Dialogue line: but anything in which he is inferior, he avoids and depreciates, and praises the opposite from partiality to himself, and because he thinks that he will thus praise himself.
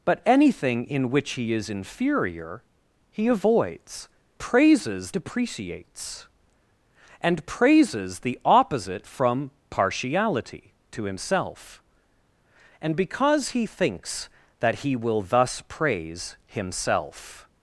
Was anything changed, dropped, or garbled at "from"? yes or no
no